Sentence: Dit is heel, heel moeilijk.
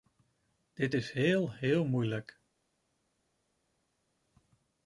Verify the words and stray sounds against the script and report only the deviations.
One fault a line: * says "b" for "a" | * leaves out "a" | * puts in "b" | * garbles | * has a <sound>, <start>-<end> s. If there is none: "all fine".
all fine